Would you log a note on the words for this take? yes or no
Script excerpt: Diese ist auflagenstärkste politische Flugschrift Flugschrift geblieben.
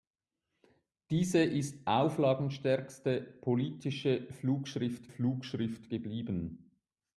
no